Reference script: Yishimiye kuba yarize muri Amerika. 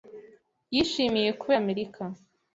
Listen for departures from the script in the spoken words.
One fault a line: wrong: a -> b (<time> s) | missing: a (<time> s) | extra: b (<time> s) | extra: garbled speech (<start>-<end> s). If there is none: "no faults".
missing: yarize muri (1.5 s)